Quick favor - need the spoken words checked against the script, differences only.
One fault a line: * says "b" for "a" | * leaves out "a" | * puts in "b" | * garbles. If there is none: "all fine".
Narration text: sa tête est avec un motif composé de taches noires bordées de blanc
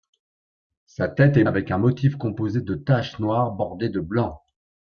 all fine